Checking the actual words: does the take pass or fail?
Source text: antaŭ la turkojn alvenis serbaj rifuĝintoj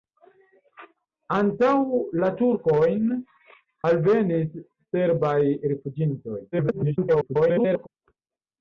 fail